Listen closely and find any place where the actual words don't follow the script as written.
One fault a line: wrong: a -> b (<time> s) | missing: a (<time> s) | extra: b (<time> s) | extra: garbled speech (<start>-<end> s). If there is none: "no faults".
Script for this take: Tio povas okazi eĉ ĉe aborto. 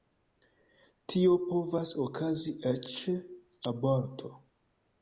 missing: ĉe (3.0 s)